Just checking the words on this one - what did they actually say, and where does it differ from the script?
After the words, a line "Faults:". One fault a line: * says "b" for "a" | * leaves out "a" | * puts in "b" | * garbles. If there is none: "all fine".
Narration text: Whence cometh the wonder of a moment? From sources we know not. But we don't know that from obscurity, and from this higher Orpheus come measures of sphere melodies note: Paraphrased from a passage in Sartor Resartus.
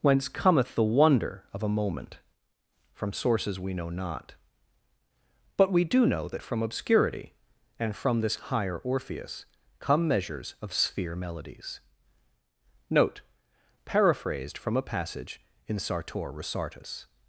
Whence cometh the wonder of a moment? From sources we know not. But we do know that from obscurity, and from this higher Orpheus come measures of sphere melodies note: Paraphrased from a passage in Sartor Resartus.
Faults:
* says "do" for "don't"